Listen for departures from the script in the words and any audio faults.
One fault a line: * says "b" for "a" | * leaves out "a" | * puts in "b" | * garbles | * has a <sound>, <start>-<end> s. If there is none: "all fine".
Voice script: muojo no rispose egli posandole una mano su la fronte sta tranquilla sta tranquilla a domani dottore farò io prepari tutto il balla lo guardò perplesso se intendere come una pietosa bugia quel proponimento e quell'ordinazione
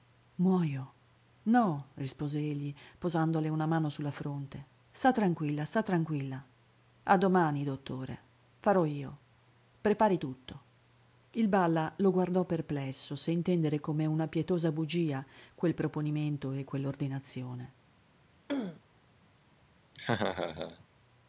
* has a throat clearing, 18.5-18.8 s
* has a laugh, 19.9-20.8 s